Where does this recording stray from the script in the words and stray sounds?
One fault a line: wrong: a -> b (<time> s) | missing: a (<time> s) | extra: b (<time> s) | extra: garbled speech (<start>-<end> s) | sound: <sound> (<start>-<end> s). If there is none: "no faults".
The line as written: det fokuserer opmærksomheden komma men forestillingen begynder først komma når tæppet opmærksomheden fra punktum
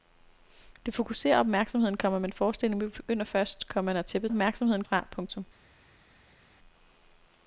no faults